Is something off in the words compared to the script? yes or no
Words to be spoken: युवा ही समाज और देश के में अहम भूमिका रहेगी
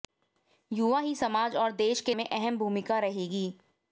no